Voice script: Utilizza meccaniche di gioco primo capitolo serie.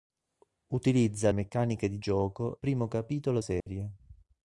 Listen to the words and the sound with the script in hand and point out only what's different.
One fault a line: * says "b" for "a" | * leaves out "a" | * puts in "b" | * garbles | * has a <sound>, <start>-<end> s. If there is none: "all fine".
* has a dropout, 3.6-3.7 s